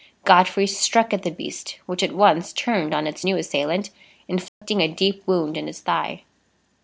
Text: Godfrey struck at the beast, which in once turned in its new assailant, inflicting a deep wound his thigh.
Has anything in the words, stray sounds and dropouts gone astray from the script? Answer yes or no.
yes